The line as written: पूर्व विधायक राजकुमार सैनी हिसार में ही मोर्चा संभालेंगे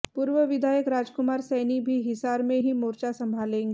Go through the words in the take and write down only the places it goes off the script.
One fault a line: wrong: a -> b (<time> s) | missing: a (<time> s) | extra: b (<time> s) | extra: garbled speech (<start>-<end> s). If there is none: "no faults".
extra: भी (1.8 s)